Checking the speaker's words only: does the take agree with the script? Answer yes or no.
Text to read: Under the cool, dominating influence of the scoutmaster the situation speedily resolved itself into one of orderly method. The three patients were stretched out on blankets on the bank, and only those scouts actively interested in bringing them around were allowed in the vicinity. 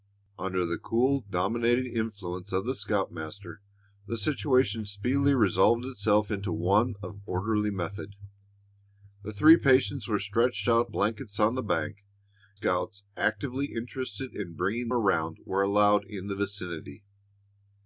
no